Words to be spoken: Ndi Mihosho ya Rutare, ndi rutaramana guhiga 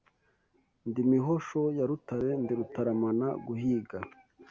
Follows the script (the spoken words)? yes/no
yes